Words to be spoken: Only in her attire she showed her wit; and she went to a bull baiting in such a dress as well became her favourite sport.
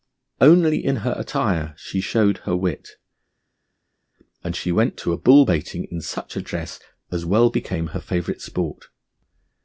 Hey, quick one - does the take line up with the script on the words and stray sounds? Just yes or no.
yes